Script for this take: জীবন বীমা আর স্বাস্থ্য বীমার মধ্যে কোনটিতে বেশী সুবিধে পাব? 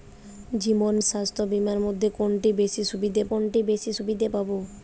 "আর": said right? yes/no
no